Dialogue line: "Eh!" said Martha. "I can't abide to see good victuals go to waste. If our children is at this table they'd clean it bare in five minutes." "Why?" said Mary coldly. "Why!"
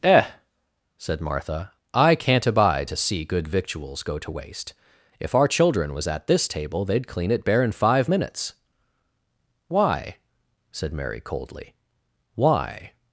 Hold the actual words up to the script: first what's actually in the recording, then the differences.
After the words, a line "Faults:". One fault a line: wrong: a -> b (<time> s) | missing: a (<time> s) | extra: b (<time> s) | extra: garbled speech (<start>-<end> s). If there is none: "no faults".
"Eh!" said Martha. "I can't abide to see good victuals go to waste. If our children was at this table they'd clean it bare in five minutes." "Why?" said Mary coldly. "Why!"
Faults:
wrong: is -> was (5.9 s)